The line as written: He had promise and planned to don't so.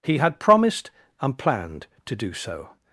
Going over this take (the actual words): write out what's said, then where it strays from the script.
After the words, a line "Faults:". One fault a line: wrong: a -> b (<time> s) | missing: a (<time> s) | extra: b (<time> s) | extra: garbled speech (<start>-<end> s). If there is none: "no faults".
He had promised and planned to do so.
Faults:
wrong: promise -> promised (0.4 s)
wrong: don't -> do (2.1 s)